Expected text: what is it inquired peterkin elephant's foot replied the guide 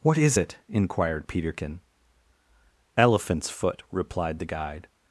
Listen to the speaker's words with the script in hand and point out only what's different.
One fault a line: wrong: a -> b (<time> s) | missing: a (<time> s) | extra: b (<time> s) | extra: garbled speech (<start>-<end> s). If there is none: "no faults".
no faults